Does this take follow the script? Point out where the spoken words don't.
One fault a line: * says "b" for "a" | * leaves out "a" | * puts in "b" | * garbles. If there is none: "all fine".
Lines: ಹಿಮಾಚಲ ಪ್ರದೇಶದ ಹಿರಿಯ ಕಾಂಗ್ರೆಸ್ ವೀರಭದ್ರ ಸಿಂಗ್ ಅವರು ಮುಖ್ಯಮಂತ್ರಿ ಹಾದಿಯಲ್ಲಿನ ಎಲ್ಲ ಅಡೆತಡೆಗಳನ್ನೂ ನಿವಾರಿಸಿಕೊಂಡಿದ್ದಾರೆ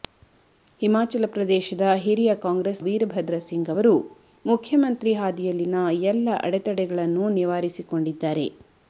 all fine